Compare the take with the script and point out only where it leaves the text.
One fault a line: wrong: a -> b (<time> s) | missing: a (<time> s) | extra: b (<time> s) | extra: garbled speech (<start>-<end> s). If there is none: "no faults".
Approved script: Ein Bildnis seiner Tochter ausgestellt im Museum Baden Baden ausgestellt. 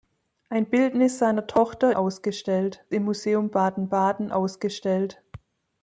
no faults